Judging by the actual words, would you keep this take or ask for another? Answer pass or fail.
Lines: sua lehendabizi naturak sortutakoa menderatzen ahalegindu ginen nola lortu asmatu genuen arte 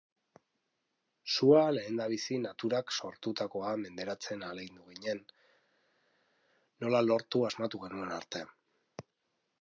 pass